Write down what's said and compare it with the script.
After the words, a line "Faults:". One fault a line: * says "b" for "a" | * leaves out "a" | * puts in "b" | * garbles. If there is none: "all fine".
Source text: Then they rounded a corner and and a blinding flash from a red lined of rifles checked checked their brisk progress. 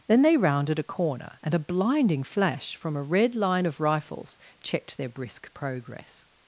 Then they rounded a corner and a blinding flash from a red line of rifles checked their brisk progress.
Faults:
* leaves out "and"
* says "line" for "lined"
* leaves out "checked"